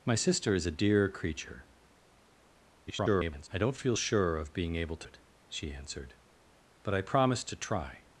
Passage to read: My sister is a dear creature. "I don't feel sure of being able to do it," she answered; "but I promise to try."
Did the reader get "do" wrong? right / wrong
wrong